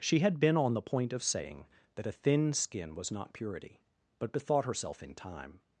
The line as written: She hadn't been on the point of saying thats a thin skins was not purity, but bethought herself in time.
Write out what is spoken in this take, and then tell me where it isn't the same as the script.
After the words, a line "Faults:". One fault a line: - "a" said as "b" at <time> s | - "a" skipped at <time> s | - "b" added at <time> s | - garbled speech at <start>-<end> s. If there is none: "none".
She had been on the point of saying that a thin skin was not purity, but bethought herself in time.
Faults:
- "hadn't" said as "had" at 0.2 s
- "thats" said as "that" at 1.9 s
- "skins" said as "skin" at 2.5 s